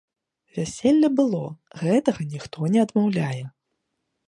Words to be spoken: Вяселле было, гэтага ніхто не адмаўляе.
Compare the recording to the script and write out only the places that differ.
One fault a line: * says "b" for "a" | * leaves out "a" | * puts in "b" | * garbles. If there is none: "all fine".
all fine